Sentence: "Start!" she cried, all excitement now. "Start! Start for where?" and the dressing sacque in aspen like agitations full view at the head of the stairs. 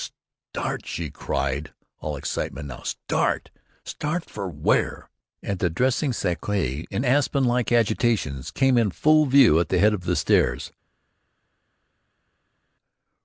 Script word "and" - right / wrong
right